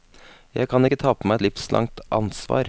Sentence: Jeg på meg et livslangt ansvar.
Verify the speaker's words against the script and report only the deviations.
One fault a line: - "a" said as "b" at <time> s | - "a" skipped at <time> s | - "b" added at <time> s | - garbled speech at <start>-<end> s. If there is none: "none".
- "kan ikke ta" added at 0.7 s